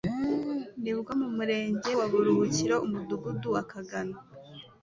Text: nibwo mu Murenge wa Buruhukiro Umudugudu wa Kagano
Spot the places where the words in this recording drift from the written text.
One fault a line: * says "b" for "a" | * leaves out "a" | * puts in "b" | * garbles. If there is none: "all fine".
all fine